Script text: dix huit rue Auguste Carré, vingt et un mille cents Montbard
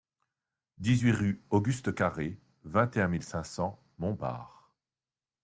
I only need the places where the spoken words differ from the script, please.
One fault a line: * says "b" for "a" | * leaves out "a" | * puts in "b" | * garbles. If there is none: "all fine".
* puts in "cinq"